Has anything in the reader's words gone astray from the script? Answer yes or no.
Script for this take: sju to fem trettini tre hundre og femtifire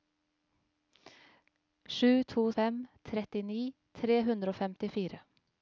no